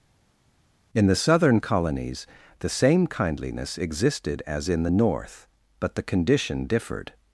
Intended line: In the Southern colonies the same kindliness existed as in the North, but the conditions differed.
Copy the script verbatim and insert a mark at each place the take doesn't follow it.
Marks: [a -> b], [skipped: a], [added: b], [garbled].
In the Southern colonies the same kindliness existed as in the North, but the [conditions -> condition] differed.